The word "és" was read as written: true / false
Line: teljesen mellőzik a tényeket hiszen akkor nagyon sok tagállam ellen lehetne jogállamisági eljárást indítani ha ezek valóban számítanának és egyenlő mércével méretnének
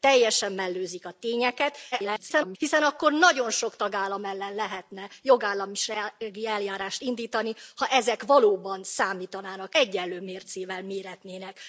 false